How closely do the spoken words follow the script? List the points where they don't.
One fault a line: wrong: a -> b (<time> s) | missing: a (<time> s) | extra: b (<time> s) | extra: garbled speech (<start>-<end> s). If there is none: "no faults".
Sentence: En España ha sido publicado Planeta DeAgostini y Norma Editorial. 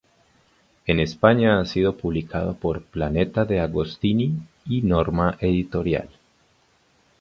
extra: por (2.5 s)